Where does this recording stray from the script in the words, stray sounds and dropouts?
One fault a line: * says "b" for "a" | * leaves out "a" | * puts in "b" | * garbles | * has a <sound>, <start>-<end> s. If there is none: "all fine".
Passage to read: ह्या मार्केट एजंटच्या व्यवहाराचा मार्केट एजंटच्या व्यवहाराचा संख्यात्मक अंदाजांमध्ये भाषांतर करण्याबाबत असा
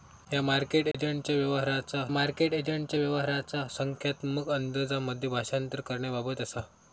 * has a dropout, 0.9-0.9 s